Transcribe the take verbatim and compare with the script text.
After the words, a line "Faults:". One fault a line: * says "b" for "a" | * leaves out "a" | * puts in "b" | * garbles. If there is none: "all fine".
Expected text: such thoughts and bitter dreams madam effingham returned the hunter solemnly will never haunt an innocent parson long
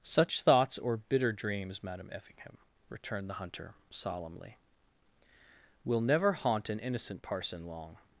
such thoughts or bitter dreams madam effingham returned the hunter solemnly will never haunt an innocent parson long
Faults:
* says "or" for "and"